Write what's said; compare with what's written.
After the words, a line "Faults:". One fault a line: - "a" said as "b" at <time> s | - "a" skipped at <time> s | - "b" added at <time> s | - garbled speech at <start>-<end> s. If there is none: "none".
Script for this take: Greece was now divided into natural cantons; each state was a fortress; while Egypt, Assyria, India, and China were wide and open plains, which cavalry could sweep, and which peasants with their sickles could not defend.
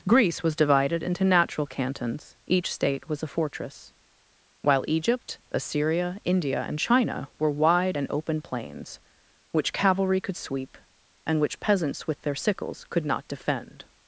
Greece was divided into natural cantons; each state was a fortress; while Egypt, Assyria, India, and China were wide and open plains, which cavalry could sweep, and which peasants with their sickles could not defend.
Faults:
- "now" skipped at 0.6 s